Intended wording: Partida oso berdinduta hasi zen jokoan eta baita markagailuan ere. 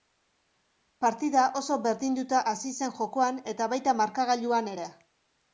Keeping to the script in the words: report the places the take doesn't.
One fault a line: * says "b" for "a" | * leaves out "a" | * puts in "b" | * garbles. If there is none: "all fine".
all fine